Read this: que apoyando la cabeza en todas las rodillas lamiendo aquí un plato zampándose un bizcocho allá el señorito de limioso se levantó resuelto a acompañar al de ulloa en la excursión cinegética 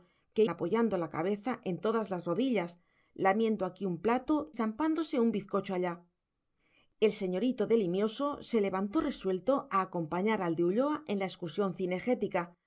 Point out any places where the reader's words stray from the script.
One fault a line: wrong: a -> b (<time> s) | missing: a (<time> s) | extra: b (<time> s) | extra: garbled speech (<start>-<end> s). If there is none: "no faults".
no faults